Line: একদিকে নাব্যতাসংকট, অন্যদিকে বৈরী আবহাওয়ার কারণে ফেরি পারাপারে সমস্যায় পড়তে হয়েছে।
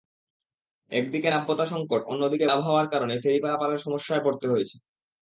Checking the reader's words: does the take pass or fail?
fail